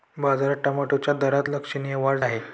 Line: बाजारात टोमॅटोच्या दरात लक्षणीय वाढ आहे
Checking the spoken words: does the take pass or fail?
pass